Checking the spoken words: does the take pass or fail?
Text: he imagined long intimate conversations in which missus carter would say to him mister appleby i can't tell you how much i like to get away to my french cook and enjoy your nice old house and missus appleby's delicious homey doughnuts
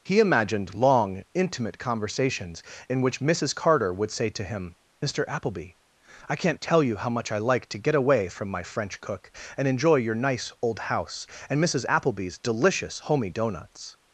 fail